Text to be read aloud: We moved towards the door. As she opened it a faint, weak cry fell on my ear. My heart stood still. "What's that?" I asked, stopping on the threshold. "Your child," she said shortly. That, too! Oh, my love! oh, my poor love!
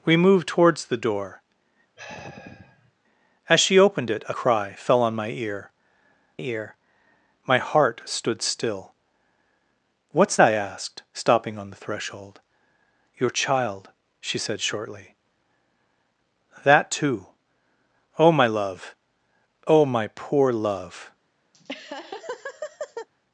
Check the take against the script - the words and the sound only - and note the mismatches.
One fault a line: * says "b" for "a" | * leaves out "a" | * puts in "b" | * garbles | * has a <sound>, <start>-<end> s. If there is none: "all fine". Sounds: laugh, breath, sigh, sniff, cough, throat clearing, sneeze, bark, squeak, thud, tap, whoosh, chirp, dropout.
* has a sigh, 2.0-2.9 s
* leaves out "faint weak"
* puts in "ear"
* leaves out "that"
* has a laugh, 21.5-23.1 s